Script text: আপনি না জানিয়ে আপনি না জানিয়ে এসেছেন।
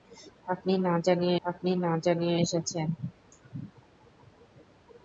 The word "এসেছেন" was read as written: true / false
true